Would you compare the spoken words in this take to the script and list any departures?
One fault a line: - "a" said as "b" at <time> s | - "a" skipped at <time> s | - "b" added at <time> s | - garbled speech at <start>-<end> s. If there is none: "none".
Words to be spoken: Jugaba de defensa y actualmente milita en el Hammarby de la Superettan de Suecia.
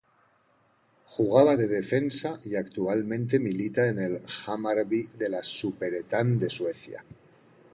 none